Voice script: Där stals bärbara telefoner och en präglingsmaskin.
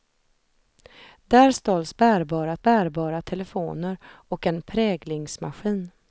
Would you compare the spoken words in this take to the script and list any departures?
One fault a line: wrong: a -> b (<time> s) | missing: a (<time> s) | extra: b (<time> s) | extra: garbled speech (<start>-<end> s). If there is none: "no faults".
extra: bärbara (2.6 s)